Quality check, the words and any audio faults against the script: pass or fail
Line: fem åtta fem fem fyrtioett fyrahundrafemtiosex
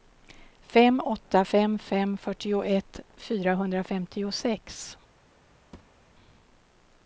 fail